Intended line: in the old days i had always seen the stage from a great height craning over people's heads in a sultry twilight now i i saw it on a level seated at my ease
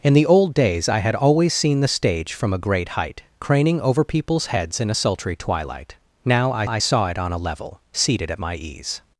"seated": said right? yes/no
yes